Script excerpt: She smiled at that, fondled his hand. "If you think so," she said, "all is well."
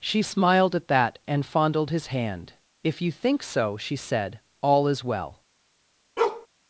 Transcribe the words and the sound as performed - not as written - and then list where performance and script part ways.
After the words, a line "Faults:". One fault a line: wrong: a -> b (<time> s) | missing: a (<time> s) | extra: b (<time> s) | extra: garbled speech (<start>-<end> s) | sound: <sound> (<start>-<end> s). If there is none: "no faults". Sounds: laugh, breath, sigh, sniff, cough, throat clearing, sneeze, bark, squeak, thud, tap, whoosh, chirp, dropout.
She smiled at that, and fondled his hand. "If you think so," she said, "all is well."
Faults:
extra: and (1.2 s)
sound: bark (6.2-6.5 s)